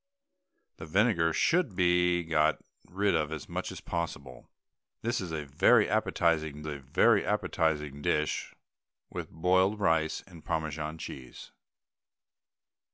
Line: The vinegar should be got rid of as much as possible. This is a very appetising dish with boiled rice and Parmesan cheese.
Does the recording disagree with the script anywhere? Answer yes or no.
yes